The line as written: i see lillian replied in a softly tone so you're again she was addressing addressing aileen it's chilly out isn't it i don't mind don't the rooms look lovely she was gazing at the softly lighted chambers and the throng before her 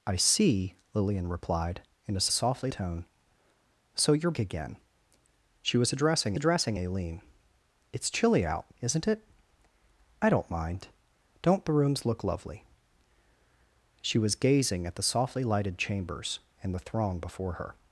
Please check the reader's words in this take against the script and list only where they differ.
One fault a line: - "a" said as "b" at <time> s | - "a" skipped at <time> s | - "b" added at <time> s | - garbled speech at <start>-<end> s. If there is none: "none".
none